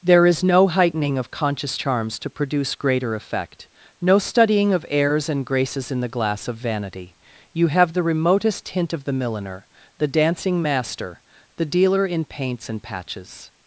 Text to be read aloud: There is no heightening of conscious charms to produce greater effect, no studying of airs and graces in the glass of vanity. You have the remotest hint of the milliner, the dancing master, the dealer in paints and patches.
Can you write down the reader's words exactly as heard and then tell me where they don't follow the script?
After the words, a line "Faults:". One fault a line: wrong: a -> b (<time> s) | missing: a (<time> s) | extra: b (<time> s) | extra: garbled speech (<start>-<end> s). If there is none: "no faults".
There is no heightening of conscious charms to produce greater effect, no studying of airs and graces in the glass of vanity. You have the remotest hint of the milliner, the dancing master, the dealer in paints and patches.
Faults:
no faults